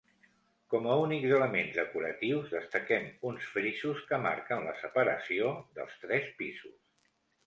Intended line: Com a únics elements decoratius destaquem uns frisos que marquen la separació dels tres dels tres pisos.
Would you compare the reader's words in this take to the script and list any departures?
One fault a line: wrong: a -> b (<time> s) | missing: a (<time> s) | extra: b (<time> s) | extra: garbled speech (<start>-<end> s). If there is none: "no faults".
missing: dels tres (6.3 s)